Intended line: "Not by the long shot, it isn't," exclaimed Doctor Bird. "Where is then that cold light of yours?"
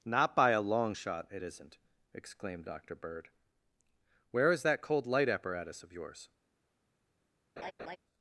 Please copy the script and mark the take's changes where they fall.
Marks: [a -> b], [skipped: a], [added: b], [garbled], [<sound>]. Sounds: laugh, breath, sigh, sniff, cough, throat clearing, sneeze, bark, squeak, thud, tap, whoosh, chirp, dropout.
"Not by [the -> a] long shot, it isn't," exclaimed Doctor Bird. "Where is [skipped: then] that cold light [added: apparatus] of yours?" [laugh]